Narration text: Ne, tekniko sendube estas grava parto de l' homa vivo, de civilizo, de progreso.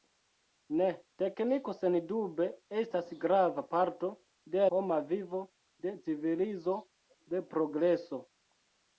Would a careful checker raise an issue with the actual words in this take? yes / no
yes